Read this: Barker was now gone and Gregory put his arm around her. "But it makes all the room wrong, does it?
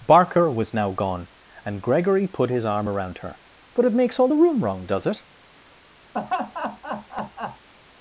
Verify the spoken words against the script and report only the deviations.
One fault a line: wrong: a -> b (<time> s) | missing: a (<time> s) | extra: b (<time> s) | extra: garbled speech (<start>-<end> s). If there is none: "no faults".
no faults